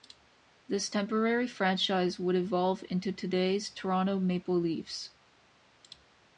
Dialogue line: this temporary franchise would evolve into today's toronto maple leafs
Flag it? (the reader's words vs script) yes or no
no